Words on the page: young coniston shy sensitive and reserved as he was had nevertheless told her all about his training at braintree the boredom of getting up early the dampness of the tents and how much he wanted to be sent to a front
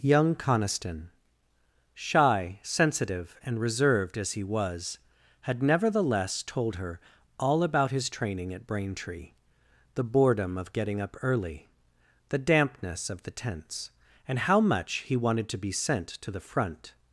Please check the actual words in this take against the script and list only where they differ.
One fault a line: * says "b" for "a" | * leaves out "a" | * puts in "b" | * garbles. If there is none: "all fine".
* says "the" for "a"